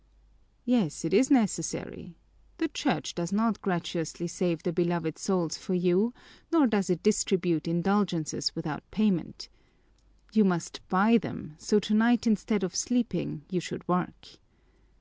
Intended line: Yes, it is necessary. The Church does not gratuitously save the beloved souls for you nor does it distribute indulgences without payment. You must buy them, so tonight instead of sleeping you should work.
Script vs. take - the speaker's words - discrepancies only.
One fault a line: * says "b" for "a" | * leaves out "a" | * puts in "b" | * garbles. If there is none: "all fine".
all fine